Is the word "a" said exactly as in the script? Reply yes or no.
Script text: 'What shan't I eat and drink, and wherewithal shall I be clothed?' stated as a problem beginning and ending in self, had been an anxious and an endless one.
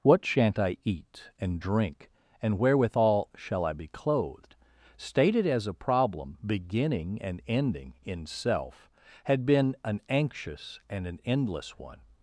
yes